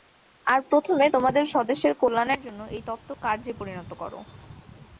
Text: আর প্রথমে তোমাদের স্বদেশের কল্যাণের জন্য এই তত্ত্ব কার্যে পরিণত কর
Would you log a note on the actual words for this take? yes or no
no